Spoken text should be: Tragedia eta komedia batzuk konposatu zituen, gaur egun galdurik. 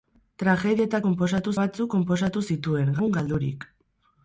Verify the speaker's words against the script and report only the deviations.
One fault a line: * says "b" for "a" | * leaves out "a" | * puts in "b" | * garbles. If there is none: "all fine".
* says "konposatu" for "komedia"
* leaves out "gaur"